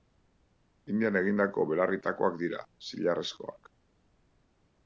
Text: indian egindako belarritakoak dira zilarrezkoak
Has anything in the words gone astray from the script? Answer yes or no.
no